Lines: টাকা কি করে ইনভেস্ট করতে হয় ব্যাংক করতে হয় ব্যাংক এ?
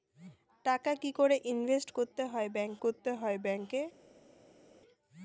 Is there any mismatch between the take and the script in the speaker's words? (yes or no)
no